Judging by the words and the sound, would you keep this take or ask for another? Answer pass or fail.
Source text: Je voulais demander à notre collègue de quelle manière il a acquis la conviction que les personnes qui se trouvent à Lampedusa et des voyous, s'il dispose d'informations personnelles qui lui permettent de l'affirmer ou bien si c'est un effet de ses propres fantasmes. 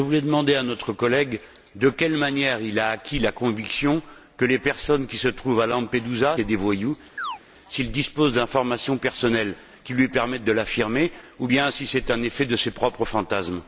fail